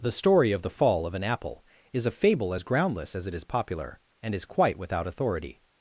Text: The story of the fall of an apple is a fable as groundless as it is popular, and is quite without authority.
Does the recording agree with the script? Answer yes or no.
yes